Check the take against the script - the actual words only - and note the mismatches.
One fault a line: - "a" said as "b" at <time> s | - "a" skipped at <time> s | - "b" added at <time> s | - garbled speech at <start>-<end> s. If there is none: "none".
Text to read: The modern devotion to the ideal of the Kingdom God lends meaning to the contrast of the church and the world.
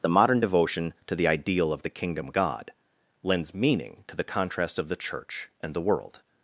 none